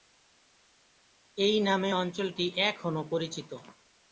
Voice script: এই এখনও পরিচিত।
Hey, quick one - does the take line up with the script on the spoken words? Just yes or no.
no